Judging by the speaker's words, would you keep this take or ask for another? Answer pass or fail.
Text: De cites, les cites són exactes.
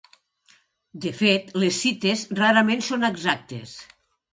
fail